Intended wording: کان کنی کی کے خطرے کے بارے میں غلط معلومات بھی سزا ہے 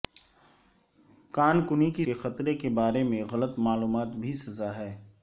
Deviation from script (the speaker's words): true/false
false